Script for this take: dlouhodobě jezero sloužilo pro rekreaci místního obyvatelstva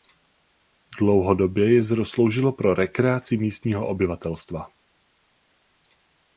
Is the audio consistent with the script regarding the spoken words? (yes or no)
yes